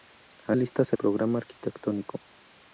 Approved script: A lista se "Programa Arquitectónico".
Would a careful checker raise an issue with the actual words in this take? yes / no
no